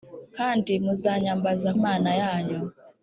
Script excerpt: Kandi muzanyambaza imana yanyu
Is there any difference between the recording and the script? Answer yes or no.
no